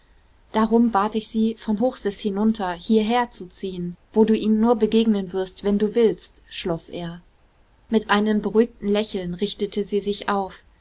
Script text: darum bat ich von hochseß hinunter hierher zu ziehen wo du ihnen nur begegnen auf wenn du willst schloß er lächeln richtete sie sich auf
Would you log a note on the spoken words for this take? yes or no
yes